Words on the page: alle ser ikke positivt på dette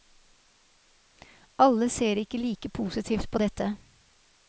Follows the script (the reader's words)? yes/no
no